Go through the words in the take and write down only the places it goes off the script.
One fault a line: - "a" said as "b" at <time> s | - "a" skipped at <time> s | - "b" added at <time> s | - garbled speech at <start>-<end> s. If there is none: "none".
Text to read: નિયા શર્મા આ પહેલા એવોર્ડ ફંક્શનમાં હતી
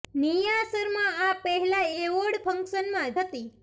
none